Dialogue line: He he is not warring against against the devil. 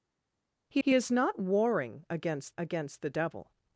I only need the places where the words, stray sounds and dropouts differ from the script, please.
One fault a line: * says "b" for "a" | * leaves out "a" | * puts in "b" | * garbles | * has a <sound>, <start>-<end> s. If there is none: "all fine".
all fine